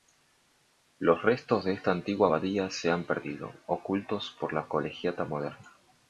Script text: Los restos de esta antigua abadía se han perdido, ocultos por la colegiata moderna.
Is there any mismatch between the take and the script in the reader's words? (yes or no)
no